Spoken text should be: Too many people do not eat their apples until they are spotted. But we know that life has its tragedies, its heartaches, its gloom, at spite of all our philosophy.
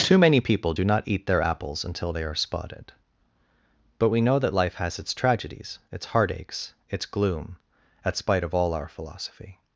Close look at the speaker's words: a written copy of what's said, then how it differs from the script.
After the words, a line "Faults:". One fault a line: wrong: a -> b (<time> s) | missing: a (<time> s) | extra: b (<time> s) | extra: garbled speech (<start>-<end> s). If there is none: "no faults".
Too many people do not eat their apples until they are spotted. But we know that life has its tragedies, its heartaches, its gloom, at spite of all our philosophy.
Faults:
no faults